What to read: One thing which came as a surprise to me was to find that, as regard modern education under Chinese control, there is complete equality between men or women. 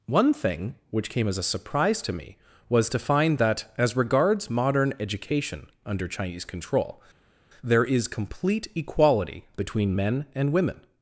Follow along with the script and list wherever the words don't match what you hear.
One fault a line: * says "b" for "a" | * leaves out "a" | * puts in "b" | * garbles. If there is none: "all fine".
* says "regards" for "regard"
* says "and" for "or"